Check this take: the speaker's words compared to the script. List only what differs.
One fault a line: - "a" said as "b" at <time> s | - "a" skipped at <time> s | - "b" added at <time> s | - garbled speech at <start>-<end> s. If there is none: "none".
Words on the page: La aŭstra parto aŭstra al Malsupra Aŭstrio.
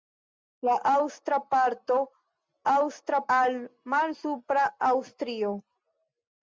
none